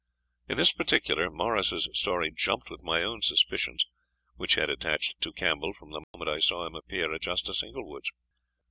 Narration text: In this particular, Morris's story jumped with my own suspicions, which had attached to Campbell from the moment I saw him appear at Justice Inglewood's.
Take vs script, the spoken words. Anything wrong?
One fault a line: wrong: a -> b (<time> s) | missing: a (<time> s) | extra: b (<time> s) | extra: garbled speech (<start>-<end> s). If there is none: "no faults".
no faults